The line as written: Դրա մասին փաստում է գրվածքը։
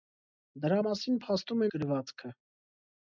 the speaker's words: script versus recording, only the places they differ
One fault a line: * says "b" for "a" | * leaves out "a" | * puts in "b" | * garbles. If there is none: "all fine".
all fine